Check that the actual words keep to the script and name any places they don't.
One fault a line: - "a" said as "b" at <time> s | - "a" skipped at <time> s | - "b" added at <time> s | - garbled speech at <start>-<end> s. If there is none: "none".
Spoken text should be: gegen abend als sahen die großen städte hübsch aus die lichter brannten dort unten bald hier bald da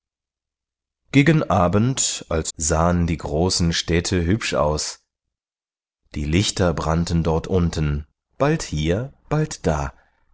none